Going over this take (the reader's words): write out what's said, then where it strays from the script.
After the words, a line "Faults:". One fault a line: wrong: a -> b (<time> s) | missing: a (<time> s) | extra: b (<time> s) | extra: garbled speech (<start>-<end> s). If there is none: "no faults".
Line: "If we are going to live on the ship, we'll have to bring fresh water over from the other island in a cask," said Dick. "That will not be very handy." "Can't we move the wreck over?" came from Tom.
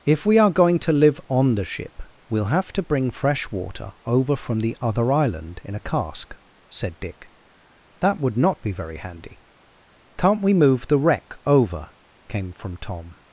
"If we are going to live on the ship, we'll have to bring fresh water over from the other island in a cask," said Dick. "That would not be very handy." "Can't we move the wreck over?" came from Tom.
Faults:
wrong: will -> would (8.2 s)